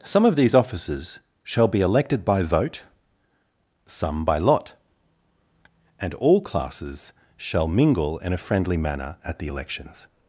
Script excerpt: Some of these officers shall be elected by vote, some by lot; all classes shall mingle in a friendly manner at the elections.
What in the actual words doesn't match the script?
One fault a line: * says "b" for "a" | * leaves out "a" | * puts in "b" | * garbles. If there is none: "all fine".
* puts in "and"